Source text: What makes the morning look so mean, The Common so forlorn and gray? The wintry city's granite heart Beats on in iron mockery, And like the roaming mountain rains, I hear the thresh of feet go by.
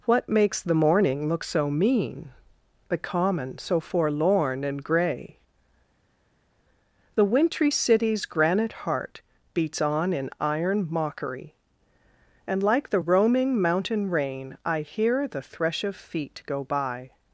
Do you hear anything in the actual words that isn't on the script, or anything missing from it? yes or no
yes